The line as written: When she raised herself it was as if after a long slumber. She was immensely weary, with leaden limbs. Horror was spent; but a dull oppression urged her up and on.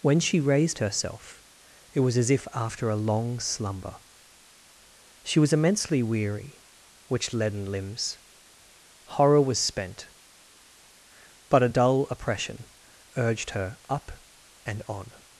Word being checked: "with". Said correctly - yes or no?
no